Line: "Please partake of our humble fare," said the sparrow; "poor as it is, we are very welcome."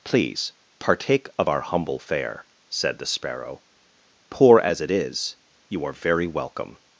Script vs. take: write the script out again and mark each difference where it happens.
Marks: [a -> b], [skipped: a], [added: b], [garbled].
"Please partake of our humble fare," said the sparrow; "poor as it is, [we -> you] are very welcome."